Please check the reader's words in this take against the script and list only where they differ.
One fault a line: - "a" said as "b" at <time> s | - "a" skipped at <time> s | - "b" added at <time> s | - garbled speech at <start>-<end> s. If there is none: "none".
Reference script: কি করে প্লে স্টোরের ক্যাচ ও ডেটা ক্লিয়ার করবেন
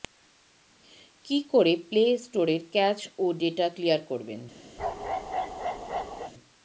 none